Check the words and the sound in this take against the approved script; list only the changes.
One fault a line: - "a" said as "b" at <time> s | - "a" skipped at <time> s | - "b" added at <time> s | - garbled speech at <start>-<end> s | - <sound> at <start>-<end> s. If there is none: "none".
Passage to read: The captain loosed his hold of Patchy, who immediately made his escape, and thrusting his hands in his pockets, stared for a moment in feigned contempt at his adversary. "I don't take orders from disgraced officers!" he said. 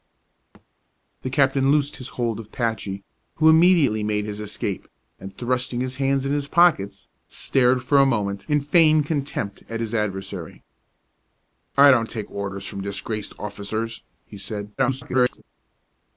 - thud at 0.5-0.7 s
- garbled speech at 14.8-15.4 s